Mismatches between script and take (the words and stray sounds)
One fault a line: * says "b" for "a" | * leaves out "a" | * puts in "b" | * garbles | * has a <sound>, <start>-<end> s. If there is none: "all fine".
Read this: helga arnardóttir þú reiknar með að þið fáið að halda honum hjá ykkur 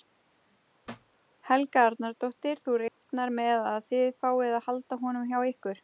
* has a thud, 0.8-1.2 s
* has a dropout, 2.9-3.0 s